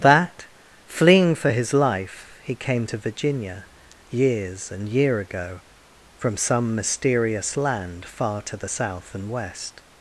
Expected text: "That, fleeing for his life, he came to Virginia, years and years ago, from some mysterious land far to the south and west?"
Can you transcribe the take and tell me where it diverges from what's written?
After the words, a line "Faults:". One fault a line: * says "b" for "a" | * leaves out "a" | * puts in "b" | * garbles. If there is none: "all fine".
"That, fleeing for his life, he came to Virginia, years and year ago, from some mysterious land far to the south and west?"
Faults:
* says "year" for "years"